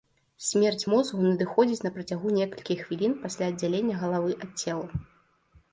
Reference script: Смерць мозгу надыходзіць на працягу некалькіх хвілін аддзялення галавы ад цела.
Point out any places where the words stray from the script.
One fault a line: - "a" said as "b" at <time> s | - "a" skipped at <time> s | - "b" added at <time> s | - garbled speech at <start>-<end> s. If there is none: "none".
- "пасля" added at 3.3 s